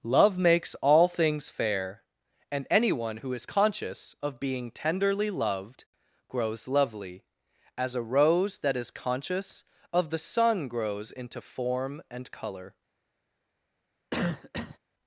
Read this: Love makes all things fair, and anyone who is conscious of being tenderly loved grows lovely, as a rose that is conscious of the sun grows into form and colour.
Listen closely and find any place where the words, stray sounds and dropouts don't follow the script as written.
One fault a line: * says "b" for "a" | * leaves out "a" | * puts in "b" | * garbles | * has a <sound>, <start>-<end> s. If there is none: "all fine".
* has a cough, 14.1-14.8 s